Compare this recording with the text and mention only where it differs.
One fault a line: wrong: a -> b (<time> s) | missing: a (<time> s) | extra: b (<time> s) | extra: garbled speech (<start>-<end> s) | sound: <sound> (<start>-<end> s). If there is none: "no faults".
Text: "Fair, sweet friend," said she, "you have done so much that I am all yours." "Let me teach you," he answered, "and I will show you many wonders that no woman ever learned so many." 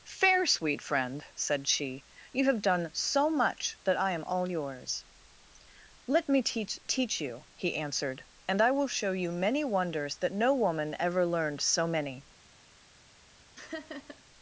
extra: teach (6.9 s)
sound: laugh (13.6-14.2 s)